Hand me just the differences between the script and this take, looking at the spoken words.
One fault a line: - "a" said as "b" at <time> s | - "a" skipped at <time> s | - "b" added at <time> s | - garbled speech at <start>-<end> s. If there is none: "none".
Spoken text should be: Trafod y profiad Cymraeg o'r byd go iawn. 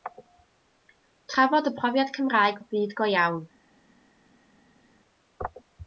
none